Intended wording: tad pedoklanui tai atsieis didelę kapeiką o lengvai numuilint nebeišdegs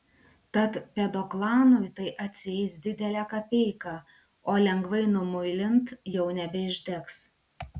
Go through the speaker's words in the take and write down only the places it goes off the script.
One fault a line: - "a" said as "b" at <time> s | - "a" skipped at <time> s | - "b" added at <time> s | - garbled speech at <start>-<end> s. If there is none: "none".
- "jau" added at 6.1 s